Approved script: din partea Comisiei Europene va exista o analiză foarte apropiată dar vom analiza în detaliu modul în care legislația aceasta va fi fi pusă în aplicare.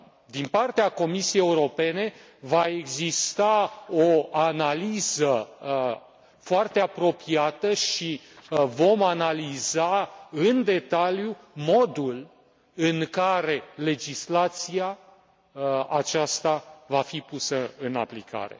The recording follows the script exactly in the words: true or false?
false